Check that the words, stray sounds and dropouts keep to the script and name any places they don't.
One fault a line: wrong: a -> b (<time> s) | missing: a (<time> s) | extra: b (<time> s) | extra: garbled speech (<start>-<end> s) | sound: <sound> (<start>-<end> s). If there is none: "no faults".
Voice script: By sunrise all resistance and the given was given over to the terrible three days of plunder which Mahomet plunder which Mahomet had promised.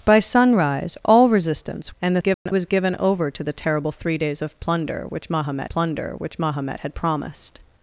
sound: dropout (2.3-2.5 s)